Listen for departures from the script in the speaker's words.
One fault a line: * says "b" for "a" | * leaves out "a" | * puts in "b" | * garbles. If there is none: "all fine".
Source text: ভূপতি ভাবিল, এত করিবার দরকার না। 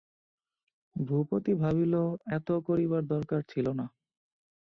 * puts in "ছিল"